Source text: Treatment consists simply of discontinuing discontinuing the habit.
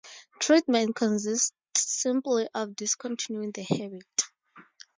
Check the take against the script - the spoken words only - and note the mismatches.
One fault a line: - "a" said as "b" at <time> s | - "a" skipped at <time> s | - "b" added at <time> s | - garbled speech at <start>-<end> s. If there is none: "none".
- "discontinuing" skipped at 3.5 s